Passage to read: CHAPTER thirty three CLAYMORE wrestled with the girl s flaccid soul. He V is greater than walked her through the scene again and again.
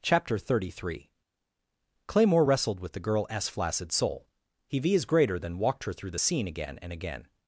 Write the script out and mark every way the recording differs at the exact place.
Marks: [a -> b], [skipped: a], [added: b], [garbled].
CHAPTER thirty three CLAYMORE wrestled with the girl s flaccid soul. He V is greater than walked her through the scene again and again.